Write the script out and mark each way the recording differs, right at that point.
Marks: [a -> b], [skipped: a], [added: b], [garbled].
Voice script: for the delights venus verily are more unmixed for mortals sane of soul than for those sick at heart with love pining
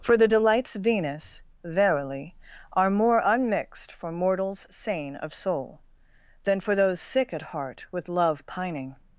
for the delights venus verily are more unmixed for mortals sane of soul than for those sick at heart with love pining